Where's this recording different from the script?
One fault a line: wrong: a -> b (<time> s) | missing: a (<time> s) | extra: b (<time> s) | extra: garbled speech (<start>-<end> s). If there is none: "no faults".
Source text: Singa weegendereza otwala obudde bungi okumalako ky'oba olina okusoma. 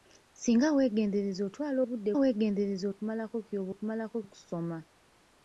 wrong: bungi -> weegendereza (2.2 s)
wrong: olina -> okumalako (3.7 s)